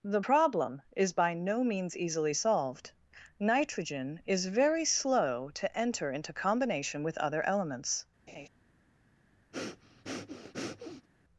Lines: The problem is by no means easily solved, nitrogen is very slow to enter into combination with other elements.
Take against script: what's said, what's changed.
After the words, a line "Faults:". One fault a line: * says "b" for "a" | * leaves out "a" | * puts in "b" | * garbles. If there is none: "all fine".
The problem is by no means easily solved, nitrogen is very slow to enter into combination with other elements.
Faults:
all fine